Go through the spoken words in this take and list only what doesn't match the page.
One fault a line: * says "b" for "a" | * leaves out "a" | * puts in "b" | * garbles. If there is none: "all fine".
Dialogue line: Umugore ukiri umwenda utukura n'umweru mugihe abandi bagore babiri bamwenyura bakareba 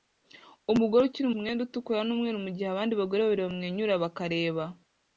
all fine